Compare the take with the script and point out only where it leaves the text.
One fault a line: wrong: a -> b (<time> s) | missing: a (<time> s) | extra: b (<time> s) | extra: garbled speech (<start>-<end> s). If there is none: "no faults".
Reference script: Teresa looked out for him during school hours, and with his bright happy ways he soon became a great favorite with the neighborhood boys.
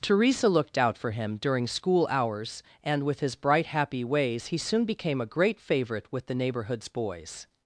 wrong: neighborhood -> neighborhoods (6.3 s)